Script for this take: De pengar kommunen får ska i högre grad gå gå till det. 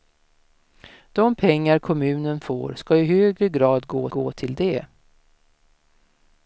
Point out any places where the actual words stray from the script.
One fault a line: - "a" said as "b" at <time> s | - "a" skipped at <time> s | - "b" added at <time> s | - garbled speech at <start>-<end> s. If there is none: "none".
none